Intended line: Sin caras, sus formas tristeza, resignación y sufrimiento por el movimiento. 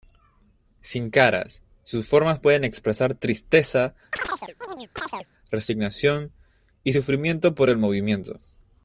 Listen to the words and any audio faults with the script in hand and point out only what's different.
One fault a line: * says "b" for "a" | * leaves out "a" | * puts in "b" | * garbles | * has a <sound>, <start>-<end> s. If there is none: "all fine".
* puts in "pueden expresar"
* has a chirp, 4.1-5.3 s